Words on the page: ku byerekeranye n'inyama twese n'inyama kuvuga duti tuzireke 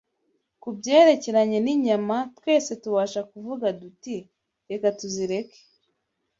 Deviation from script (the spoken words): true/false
true